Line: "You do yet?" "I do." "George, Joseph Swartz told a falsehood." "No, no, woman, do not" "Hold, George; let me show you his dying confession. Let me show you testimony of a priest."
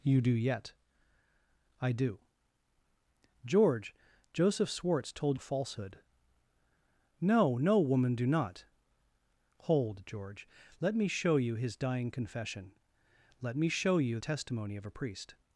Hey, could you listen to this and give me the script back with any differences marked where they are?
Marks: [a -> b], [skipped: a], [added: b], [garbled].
"You do yet?" "I do." "George, Joseph Swartz told a falsehood." "No, no, woman, do not" "Hold, George; let me show you his dying confession. Let me show you testimony of a priest."